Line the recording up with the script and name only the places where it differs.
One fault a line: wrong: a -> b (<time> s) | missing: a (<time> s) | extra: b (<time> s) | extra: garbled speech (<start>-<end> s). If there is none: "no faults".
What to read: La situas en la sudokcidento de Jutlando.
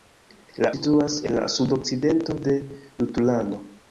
no faults